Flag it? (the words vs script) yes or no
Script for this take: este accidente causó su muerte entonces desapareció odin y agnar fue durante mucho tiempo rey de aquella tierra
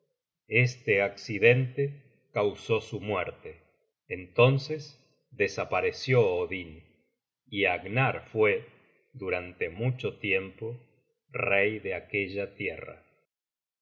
no